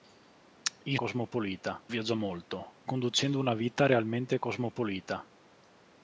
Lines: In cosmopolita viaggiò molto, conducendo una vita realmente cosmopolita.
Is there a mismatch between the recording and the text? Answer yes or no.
no